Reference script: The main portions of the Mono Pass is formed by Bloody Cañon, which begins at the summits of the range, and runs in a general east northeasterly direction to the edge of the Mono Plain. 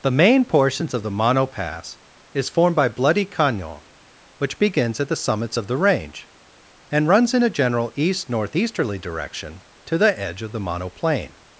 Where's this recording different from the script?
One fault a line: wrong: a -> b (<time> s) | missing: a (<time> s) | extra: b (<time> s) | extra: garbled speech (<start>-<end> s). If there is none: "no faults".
no faults